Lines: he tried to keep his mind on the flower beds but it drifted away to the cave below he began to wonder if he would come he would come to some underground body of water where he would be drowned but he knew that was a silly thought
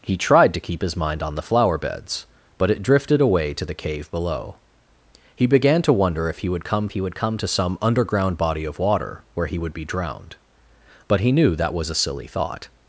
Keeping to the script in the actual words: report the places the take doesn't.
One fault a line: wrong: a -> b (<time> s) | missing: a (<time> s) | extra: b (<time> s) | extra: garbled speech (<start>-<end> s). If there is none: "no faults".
no faults